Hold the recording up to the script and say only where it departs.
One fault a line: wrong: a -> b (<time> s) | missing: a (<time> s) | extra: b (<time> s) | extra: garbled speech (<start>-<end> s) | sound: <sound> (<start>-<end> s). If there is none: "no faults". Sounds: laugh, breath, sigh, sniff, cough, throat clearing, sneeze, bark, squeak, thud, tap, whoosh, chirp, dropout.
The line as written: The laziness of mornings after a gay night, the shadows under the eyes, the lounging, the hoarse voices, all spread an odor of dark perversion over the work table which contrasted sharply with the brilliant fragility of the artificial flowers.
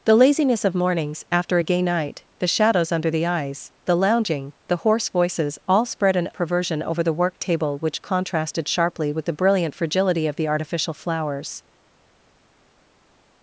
missing: odor of dark (6.3 s)